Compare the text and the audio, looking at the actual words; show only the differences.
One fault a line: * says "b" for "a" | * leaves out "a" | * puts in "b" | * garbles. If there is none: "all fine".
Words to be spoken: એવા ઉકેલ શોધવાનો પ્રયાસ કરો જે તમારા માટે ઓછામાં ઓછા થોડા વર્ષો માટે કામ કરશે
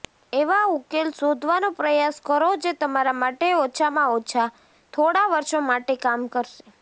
all fine